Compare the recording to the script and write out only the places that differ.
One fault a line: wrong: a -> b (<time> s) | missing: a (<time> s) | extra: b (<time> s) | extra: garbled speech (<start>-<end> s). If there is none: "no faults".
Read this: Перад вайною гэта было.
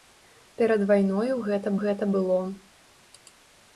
extra: гэта (1.8 s)